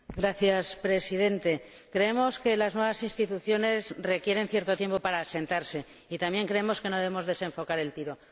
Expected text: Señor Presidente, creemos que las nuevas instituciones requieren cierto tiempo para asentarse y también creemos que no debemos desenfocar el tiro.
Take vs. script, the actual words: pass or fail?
pass